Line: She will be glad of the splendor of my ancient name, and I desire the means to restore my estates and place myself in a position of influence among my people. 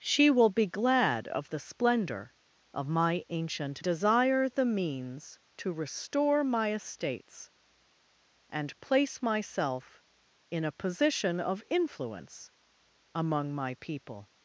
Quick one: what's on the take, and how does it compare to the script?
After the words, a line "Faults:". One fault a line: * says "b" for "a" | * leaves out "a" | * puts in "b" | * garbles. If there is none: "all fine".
She will be glad of the splendor of my ancient desire the means to restore my estates and place myself in a position of influence among my people.
Faults:
* leaves out "name and I"